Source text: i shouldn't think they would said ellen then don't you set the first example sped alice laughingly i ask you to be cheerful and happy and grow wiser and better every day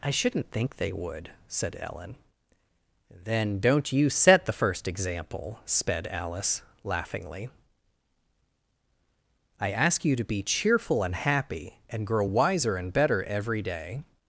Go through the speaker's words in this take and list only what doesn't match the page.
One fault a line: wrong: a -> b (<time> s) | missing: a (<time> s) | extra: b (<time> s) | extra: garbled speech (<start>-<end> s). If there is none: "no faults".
no faults